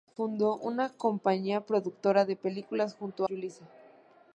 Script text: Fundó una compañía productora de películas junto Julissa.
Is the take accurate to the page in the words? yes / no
yes